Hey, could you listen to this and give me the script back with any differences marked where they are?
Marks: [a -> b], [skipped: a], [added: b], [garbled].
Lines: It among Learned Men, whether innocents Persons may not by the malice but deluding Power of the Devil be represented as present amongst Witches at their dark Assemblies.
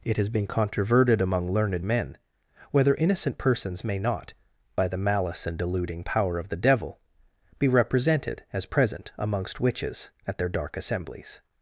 It [added: has been Controverted] among Learned Men, whether [innocents -> innocent] Persons may not by the malice [but -> and] deluding Power of the Devil be represented as present amongst Witches at their dark Assemblies.